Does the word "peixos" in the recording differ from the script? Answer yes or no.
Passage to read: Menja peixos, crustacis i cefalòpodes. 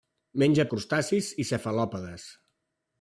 yes